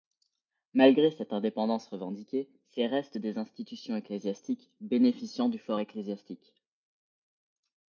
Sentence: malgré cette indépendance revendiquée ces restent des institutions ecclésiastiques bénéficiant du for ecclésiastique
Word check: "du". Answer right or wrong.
right